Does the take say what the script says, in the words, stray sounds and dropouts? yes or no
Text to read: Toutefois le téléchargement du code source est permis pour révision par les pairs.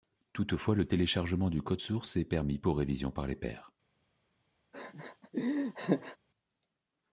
no